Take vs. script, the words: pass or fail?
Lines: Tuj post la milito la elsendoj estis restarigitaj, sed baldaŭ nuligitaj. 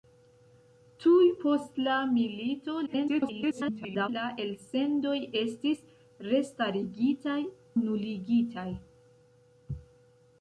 fail